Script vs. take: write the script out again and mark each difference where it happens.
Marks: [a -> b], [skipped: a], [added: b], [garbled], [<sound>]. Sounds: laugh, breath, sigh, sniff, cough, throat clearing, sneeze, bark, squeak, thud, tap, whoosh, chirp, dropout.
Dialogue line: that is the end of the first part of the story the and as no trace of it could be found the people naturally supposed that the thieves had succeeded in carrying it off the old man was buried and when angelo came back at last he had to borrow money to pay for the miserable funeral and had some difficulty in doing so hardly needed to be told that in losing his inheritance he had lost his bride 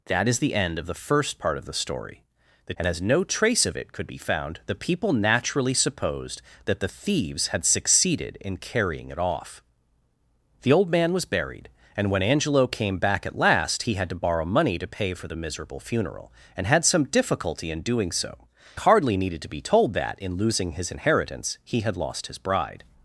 that is the end of the first part of the story the and as no trace of it could be found the people naturally supposed that the thieves had succeeded in carrying it off the old man was buried and when angelo came back at last he had to borrow money to pay for the miserable funeral and had some difficulty in doing so hardly needed to be told that in losing his inheritance he had lost his bride